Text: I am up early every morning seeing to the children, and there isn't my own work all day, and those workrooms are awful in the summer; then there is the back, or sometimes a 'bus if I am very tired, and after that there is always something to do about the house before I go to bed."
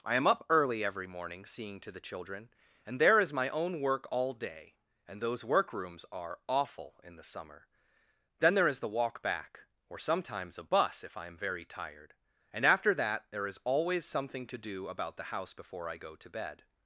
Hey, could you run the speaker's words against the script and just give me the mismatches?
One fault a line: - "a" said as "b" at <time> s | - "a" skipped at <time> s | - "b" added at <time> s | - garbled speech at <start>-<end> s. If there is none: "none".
- "isn't" said as "is" at 3.2 s
- "walk" added at 8.9 s